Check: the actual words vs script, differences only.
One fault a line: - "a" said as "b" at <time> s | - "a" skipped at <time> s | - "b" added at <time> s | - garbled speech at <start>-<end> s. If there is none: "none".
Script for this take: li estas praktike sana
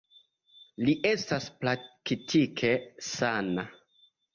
none